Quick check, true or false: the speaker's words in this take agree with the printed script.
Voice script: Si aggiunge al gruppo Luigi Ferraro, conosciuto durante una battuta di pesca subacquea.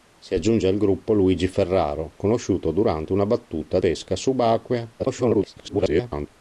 false